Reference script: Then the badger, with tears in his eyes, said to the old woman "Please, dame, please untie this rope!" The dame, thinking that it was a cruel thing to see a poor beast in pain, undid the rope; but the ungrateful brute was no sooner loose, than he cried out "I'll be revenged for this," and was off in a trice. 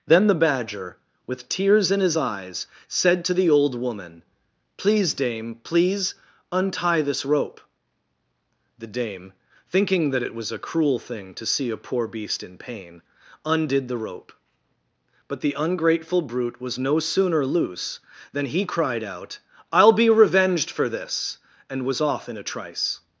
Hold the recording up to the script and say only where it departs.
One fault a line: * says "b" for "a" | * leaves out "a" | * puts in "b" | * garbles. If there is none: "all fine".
all fine